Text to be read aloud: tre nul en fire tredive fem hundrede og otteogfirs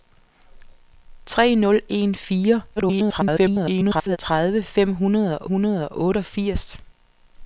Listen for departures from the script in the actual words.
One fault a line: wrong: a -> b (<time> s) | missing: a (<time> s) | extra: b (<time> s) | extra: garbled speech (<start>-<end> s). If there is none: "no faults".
extra: garbled speech (2.8-4.2 s)
extra: hundrede og (5.4 s)